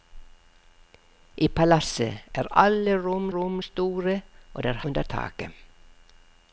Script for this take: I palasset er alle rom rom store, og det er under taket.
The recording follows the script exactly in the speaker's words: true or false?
true